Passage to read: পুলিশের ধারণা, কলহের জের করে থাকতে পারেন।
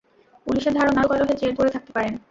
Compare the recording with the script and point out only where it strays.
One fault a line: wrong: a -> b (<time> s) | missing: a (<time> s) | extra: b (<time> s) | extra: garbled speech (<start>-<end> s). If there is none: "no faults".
no faults